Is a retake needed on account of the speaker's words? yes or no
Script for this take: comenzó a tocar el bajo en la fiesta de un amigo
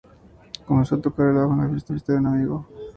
yes